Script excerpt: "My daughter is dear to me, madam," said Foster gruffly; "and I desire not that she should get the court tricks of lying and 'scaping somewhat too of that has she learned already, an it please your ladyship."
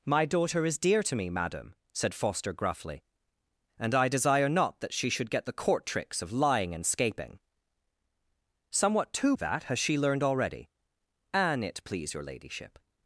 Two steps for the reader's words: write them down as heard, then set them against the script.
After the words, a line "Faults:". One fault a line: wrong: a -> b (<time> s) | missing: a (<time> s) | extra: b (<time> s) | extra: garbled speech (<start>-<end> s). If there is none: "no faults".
"My daughter is dear to me, madam," said Foster gruffly; "and I desire not that she should get the court tricks of lying and 'scaping somewhat too of that has she learned already, an it please your ladyship."
Faults:
no faults